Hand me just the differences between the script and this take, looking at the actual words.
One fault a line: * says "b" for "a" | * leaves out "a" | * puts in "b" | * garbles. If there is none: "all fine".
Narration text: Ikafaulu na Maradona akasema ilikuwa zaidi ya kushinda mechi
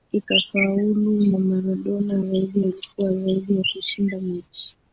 * says "zaidi" for "akasema"